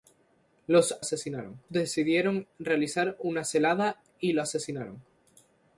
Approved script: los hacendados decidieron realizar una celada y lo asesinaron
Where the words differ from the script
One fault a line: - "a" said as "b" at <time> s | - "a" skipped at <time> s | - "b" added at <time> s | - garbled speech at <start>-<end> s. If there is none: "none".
- "hacendados" said as "asesinaron" at 1.0 s